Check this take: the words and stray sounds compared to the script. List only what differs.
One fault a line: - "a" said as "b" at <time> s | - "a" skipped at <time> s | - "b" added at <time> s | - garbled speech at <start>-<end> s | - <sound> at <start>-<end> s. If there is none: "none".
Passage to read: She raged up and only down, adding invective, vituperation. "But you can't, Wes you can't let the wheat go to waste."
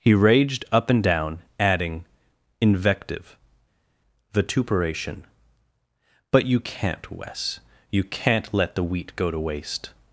- "She" said as "He" at 0.0 s
- "only" skipped at 1.0 s